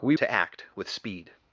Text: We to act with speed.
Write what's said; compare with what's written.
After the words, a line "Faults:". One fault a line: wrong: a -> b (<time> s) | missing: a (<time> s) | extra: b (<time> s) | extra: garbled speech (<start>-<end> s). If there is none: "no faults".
We to act with speed.
Faults:
no faults